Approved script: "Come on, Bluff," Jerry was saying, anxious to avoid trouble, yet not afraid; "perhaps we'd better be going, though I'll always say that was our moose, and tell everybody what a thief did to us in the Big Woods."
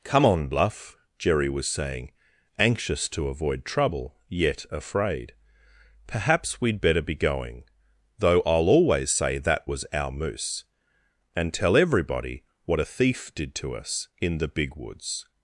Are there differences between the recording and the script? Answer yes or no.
yes